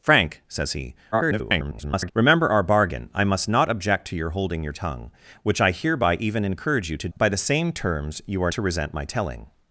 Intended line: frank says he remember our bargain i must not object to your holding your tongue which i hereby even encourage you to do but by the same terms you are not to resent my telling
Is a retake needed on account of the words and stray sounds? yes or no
yes